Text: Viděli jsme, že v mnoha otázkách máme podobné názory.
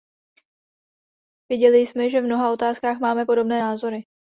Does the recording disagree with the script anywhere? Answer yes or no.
no